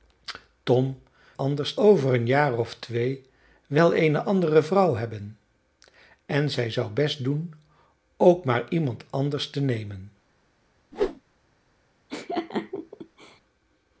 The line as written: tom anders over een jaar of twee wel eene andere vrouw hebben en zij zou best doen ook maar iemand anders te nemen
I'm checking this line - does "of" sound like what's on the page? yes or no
yes